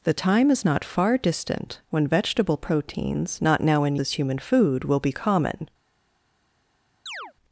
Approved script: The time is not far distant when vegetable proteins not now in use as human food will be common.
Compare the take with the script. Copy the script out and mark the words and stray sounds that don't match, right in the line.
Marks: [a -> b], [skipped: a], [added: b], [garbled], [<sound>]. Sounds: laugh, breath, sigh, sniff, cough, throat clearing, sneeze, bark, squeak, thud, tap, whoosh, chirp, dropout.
The time is not far distant when vegetable proteins not now in [skipped: use] as human food will be common. [chirp]